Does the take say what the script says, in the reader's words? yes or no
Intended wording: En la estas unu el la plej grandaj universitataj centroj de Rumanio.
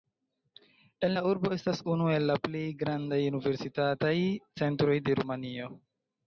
no